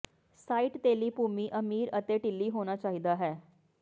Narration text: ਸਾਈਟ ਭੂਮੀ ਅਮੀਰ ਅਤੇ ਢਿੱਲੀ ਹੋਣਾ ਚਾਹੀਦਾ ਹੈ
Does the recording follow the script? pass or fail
fail